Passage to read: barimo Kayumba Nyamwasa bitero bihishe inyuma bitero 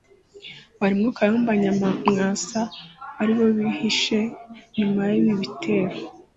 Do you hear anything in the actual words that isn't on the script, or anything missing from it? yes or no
yes